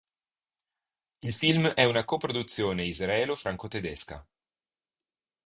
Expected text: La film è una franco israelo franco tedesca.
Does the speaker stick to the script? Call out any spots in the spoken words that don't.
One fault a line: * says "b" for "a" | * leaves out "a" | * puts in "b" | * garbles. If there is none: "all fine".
* says "Il" for "La"
* says "coproduzione" for "franco"